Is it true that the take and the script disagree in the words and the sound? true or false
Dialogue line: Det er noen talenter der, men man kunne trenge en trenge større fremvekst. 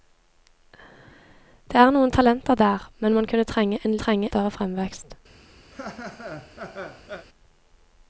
true